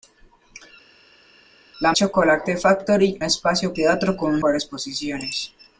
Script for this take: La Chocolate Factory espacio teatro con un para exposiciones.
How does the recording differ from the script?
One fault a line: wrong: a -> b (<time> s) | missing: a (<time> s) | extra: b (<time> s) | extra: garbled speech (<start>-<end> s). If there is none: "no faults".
no faults